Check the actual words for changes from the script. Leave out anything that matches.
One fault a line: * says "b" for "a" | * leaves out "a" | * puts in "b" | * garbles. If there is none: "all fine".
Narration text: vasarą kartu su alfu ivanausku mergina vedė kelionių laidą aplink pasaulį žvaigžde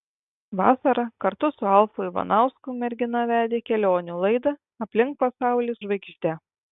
all fine